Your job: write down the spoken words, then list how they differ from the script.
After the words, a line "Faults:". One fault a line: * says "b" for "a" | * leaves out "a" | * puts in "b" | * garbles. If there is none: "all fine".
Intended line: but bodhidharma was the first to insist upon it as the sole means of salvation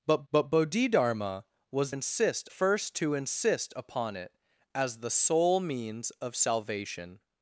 but but bodhidharma was insist first to insist upon it as the sole means of salvation
Faults:
* puts in "but"
* says "insist" for "the"